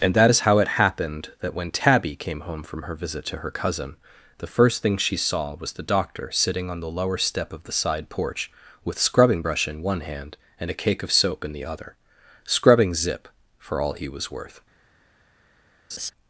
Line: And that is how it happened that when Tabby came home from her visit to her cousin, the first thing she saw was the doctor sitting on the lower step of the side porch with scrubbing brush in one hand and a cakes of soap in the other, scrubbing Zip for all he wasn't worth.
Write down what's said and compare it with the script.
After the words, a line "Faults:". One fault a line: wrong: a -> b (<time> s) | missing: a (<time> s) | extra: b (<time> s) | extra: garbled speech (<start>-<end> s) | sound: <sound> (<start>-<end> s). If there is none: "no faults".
And that is how it happened that when Tabby came home from her visit to her cousin, the first thing she saw was the doctor sitting on the lower step of the side porch with scrubbing brush in one hand and a cake of soap in the other, scrubbing Zip for all he was worth.
Faults:
wrong: cakes -> cake (10.8 s)
wrong: wasn't -> was (14.1 s)
sound: laugh (15.9-16.1 s)